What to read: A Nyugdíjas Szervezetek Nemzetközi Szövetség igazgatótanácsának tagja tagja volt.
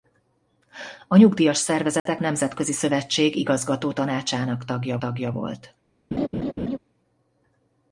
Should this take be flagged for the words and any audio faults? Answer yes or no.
yes